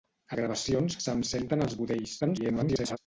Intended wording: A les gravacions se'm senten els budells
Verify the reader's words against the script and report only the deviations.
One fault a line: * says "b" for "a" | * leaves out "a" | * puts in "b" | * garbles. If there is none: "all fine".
* leaves out "les"
* garbles